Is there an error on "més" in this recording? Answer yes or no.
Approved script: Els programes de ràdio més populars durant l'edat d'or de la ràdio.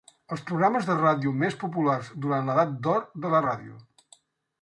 no